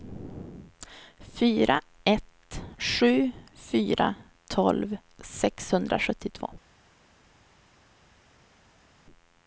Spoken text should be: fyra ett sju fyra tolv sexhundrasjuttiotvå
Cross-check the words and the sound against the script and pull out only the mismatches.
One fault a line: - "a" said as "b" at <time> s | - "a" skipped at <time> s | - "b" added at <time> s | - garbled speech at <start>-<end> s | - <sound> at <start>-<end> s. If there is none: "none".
none